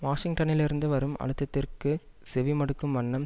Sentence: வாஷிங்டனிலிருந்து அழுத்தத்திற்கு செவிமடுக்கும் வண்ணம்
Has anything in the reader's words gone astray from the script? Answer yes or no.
yes